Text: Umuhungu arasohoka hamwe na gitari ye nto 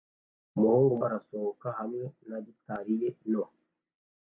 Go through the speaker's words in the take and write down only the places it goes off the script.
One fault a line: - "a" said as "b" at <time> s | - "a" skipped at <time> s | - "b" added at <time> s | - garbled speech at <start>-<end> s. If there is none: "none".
none